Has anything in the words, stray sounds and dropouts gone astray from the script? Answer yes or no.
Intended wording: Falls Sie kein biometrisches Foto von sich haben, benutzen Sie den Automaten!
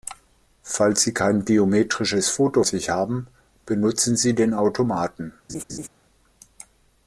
yes